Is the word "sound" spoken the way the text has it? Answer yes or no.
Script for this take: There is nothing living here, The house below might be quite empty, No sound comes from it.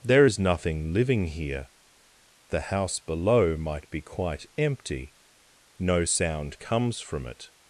yes